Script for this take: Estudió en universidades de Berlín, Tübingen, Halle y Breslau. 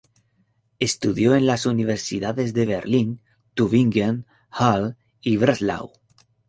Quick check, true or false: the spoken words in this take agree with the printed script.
false